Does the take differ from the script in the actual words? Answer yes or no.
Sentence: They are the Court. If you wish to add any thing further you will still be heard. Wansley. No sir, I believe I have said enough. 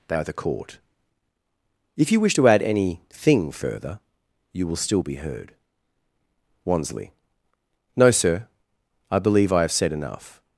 no